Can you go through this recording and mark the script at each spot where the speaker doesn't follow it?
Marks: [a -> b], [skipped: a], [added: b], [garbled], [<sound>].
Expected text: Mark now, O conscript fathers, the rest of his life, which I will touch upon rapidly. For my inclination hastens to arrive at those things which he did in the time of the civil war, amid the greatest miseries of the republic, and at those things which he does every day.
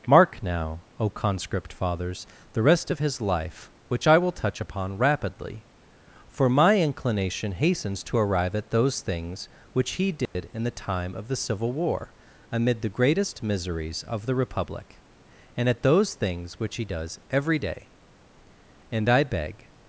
Mark now, O conscript fathers, the rest of his life, which I will touch upon rapidly. For my inclination hastens to arrive at those things which he did [dropout] in the time of the civil war, amid the greatest miseries of the republic, and at those things which he does every day. [added: And I beg]